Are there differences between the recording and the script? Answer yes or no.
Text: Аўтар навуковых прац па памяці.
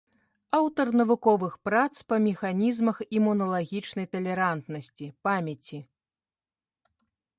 yes